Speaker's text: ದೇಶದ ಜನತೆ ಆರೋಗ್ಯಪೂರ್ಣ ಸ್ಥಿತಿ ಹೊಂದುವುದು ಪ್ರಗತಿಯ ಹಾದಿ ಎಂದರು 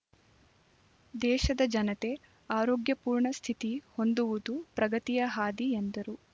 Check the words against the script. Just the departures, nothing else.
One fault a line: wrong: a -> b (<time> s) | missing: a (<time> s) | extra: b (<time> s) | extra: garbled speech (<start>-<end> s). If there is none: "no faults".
no faults